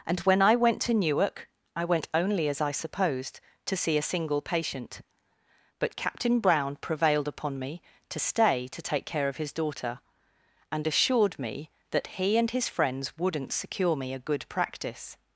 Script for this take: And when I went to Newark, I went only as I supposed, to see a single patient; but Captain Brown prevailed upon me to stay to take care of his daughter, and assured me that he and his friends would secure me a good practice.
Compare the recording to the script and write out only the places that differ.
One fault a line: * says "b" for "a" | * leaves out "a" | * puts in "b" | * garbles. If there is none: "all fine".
* says "wouldn't" for "would"